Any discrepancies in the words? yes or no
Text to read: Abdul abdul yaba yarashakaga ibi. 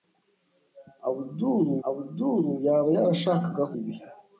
no